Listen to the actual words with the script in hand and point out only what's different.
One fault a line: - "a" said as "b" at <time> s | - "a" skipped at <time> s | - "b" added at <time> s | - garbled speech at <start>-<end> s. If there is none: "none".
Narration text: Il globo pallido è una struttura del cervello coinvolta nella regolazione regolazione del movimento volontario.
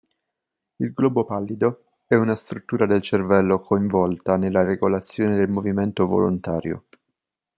- "regolazione" skipped at 5.3 s